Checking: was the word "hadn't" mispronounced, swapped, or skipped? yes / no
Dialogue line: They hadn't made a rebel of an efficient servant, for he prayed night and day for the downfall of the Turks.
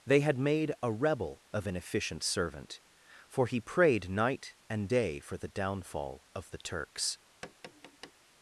yes